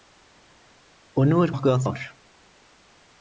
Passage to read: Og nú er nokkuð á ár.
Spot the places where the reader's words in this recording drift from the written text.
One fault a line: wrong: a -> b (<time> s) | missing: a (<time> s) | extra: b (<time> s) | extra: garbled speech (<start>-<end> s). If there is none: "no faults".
no faults